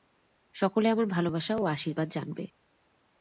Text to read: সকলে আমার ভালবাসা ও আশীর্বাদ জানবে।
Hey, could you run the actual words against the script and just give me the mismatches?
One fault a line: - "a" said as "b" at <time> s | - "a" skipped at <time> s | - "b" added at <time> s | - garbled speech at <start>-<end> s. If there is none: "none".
none